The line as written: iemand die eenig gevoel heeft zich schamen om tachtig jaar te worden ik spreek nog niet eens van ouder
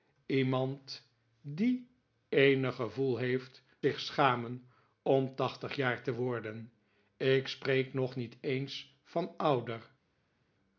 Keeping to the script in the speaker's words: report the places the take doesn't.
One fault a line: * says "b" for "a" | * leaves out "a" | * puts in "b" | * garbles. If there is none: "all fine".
all fine